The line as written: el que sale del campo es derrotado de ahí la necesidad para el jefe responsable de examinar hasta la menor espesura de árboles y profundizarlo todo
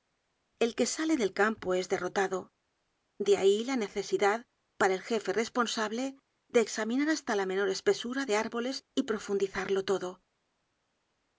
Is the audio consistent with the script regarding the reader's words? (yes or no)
yes